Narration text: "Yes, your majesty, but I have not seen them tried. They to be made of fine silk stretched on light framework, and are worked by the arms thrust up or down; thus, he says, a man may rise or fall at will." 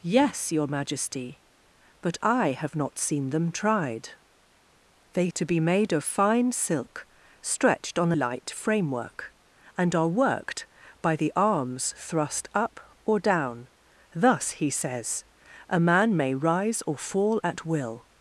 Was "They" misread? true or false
false